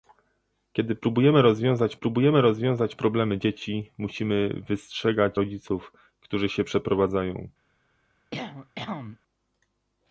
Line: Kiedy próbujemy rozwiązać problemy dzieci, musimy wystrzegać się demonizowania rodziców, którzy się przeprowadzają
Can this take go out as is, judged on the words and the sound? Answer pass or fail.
fail